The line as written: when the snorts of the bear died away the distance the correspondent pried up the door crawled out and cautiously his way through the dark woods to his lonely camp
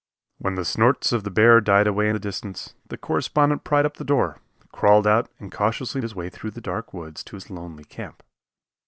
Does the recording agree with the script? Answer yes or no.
yes